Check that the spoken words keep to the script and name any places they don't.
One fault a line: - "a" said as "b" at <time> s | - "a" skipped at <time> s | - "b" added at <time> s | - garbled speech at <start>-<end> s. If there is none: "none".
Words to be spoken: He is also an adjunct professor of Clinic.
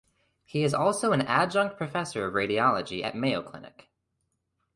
- "radiology at Mayo" added at 2.3 s